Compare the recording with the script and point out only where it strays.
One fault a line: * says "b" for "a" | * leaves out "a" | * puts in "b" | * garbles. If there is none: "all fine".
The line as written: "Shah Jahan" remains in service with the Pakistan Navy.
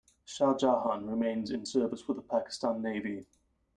all fine